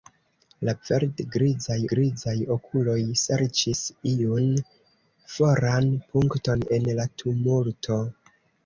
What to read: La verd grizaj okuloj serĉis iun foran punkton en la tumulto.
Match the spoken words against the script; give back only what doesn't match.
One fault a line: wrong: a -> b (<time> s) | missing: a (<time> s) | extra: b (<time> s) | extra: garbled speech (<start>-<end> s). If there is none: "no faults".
extra: grizaj (1.9 s)